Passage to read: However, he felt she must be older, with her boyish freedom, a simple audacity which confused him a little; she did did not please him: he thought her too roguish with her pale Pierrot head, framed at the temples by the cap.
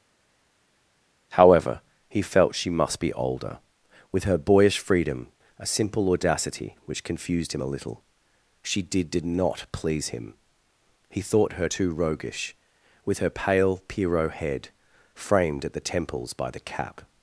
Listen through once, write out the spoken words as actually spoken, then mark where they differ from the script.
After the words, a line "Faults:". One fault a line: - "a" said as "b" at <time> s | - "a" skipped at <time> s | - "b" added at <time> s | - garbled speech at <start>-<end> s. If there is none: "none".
However, he felt she must be older, with her boyish freedom, a simple audacity which confused him a little; she did did not please him: he thought her too roguish with her pale Pierrot head, framed at the temples by the cap.
Faults:
none